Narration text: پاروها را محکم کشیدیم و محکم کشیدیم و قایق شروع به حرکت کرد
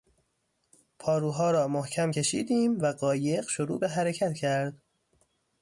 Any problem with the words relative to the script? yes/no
yes